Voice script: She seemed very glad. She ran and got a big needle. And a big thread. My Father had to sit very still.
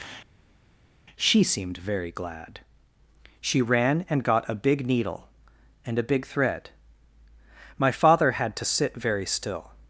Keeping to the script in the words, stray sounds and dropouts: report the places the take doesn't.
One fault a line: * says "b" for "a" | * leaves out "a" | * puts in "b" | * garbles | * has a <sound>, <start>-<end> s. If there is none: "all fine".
all fine